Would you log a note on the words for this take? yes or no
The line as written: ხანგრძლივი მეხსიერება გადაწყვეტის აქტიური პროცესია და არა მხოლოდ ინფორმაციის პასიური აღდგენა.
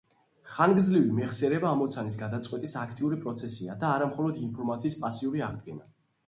yes